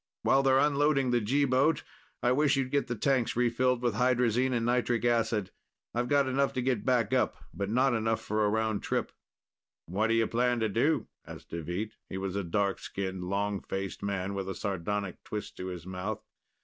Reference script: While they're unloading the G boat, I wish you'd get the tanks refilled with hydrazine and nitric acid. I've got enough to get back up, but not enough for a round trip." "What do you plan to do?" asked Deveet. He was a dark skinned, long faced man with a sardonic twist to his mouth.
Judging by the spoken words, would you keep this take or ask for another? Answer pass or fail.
pass